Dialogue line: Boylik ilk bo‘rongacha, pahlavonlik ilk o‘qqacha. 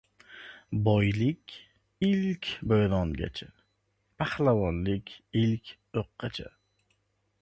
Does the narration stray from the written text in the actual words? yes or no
no